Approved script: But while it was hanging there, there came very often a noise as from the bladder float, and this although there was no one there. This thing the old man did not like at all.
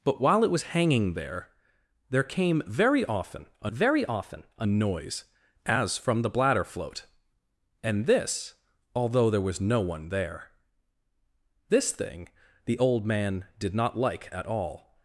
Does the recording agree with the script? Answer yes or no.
no